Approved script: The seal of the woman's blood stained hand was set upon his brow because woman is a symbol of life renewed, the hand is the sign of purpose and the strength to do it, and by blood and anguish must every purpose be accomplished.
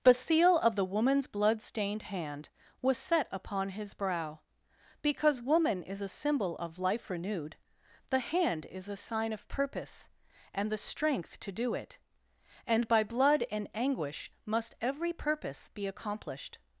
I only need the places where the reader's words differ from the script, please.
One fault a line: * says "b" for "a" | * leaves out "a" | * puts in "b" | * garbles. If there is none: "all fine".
* says "a" for "the"